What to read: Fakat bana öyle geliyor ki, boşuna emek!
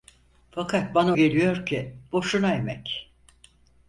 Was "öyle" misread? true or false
true